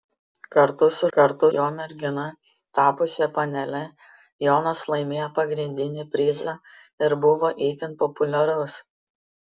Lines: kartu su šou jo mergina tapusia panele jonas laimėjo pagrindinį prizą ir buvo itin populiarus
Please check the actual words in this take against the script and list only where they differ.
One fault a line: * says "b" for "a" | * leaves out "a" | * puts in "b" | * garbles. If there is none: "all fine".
* says "kartu" for "šou"